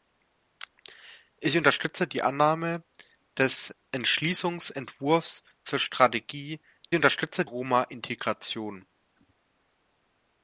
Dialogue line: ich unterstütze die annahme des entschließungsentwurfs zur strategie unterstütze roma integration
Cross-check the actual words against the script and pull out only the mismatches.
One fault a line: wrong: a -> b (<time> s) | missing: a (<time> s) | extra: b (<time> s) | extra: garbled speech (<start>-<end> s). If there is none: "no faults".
no faults